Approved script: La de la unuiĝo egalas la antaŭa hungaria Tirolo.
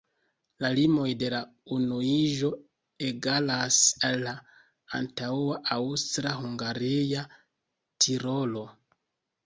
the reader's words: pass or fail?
fail